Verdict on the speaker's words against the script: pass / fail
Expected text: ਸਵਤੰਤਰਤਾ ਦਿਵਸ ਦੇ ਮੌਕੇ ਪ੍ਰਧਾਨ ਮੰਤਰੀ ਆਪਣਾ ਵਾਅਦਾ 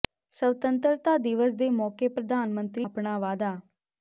pass